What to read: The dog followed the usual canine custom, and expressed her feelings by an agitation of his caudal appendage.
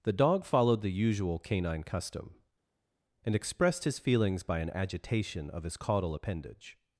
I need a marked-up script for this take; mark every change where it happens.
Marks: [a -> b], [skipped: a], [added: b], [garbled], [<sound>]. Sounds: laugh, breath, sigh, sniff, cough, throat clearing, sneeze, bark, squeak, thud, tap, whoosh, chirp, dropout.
The dog followed the usual canine custom, and expressed [her -> his] feelings by an agitation of his caudal appendage.